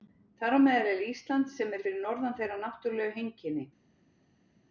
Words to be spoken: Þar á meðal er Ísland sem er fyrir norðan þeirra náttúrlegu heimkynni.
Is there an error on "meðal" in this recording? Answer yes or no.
no